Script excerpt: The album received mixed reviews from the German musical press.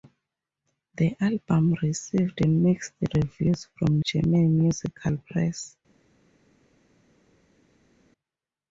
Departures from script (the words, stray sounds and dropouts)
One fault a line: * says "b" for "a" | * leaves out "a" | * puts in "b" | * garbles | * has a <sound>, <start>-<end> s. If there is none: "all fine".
* leaves out "the"